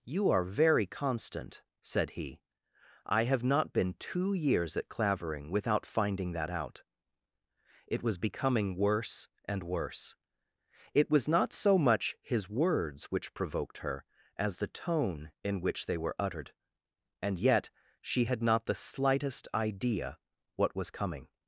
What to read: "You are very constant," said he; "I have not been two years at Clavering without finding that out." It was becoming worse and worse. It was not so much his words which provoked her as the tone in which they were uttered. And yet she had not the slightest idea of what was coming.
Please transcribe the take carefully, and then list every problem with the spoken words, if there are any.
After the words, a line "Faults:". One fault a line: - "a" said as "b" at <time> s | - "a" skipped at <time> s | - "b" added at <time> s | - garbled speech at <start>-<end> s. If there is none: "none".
"You are very constant," said he; "I have not been two years at Clavering without finding that out." It was becoming worse and worse. It was not so much his words which provoked her as the tone in which they were uttered. And yet she had not the slightest idea what was coming.
Faults:
- "of" skipped at 20.2 s